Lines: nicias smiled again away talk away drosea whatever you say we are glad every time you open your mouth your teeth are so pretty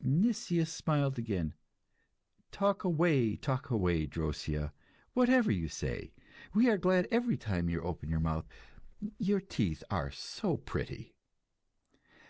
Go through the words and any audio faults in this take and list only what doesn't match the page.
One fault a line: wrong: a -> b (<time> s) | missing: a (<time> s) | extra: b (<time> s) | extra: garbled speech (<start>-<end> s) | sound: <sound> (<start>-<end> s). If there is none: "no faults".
extra: talk (2.5 s)